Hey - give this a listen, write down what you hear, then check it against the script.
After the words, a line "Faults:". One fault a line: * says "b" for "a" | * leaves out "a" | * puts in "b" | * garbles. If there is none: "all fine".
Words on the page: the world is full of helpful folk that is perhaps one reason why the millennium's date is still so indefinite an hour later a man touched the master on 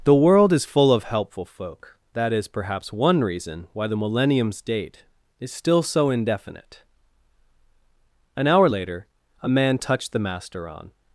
the world is full of helpful folk that is perhaps one reason why the millennium's date is still so indefinite an hour later a man touched the master on
Faults:
all fine